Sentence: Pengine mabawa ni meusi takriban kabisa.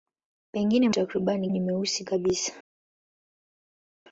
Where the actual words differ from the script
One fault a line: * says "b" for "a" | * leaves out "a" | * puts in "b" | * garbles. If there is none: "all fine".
* says "takriban" for "mabawa"
* leaves out "takriban"